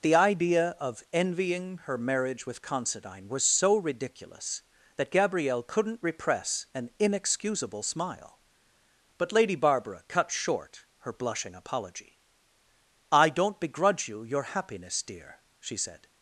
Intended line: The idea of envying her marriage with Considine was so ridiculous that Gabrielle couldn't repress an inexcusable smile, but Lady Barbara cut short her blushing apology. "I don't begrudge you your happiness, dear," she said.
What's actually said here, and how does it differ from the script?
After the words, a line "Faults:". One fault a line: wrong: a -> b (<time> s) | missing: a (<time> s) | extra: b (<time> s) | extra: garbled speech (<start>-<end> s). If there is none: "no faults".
The idea of envying her marriage with Considine was so ridiculous that Gabrielle couldn't repress an inexcusable smile, but Lady Barbara cut short her blushing apology. "I don't begrudge you your happiness, dear," she said.
Faults:
no faults